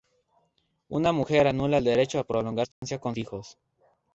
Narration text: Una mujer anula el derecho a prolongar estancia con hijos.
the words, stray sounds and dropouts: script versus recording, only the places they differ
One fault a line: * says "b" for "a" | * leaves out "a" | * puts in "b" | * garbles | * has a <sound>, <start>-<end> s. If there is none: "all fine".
* has a dropout, 2.7-2.8 s